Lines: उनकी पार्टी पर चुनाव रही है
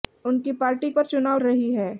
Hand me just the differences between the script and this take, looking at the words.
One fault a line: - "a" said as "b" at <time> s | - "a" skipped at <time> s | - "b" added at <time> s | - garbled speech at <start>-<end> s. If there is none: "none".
none